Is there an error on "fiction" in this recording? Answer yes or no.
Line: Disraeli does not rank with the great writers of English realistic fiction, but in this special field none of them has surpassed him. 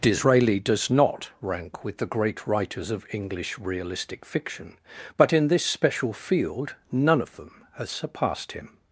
no